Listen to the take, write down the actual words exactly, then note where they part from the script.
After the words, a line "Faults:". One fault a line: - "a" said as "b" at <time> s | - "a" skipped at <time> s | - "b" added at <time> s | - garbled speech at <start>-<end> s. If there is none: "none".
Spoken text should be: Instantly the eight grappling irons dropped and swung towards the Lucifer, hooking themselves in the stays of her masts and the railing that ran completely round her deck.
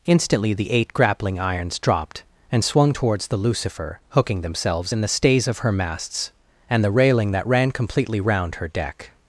Instantly the eight grappling irons dropped and swung towards the Lucifer, hooking themselves in the stays of her masts and the railing that ran completely round her deck.
Faults:
none